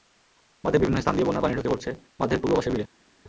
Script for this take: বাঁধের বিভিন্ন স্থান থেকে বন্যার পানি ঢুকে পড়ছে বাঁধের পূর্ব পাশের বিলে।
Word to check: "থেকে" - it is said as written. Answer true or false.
false